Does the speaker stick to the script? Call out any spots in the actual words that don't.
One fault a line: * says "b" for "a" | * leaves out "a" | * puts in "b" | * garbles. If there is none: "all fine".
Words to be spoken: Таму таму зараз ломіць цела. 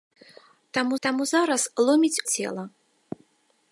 all fine